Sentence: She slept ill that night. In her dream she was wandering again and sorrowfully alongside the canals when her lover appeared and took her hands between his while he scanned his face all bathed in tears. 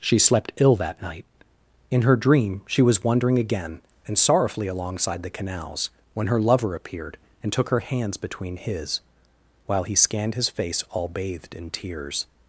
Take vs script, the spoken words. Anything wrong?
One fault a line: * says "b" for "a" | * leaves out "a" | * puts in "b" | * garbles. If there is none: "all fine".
all fine